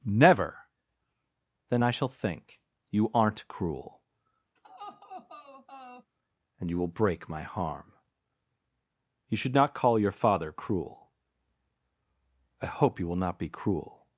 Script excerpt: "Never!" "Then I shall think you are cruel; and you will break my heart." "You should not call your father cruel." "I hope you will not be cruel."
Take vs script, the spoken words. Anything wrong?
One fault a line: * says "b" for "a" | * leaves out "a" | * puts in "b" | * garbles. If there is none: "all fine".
* says "aren't" for "are"
* says "harm" for "heart"